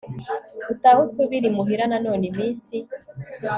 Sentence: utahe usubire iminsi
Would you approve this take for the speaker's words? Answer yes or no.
no